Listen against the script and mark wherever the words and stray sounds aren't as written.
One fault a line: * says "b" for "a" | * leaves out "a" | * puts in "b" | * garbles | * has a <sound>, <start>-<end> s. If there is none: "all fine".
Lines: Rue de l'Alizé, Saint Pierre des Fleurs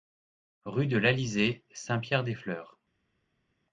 all fine